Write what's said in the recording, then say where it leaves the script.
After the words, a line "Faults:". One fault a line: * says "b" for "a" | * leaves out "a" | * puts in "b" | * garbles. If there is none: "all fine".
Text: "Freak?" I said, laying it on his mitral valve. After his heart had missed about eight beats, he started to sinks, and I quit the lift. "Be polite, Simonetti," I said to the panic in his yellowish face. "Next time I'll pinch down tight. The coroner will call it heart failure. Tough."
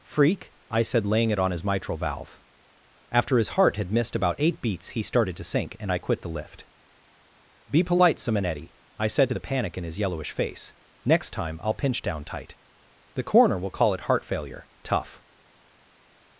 "Freak?" I said, laying it on his mitral valve. After his heart had missed about eight beats, he started to sink, and I quit the lift. "Be polite, Simonetti," I said to the panic in his yellowish face. "Next time I'll pinch down tight. The coroner will call it heart failure. Tough."
Faults:
* says "sink" for "sinks"